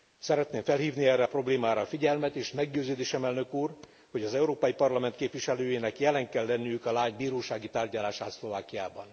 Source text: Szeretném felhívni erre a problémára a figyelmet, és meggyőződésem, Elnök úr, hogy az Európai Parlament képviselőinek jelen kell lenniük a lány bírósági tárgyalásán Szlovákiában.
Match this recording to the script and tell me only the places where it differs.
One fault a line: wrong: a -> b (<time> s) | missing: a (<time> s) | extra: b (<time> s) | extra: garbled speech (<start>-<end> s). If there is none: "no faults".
no faults